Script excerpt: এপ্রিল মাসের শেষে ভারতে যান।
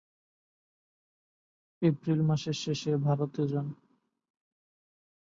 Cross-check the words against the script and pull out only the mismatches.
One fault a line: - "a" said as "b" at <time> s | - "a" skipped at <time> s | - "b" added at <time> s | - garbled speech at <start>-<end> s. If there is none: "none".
none